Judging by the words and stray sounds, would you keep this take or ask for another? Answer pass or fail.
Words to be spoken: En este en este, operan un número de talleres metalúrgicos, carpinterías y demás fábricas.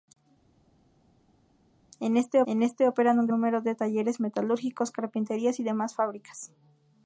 pass